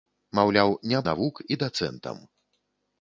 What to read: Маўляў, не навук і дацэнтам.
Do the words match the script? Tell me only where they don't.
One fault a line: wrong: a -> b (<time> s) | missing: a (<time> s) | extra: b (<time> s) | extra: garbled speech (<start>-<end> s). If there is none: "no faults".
no faults